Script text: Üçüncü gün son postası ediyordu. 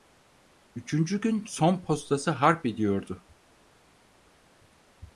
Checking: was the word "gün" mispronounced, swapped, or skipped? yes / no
no